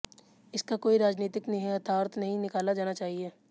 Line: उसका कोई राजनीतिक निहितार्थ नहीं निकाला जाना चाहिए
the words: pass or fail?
fail